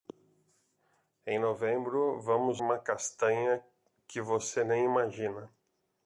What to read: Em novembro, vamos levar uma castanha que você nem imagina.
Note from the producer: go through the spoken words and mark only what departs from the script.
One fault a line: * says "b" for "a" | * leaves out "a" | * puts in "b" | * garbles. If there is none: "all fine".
* leaves out "levar"